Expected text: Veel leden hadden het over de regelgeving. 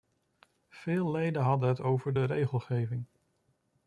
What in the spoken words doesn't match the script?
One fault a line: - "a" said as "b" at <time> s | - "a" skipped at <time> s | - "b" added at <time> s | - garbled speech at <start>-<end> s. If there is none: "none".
none